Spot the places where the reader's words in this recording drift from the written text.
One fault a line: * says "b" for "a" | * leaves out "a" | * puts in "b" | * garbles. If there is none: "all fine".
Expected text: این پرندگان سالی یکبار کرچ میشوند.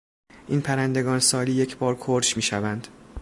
all fine